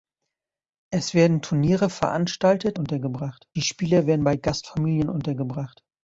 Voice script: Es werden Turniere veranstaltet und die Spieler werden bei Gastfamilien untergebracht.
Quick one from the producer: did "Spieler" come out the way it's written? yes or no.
yes